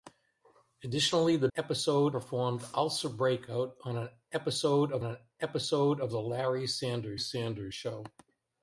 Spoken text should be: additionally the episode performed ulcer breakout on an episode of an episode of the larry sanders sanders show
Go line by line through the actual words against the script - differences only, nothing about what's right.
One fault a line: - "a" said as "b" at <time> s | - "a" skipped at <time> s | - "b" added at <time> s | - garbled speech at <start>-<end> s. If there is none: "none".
none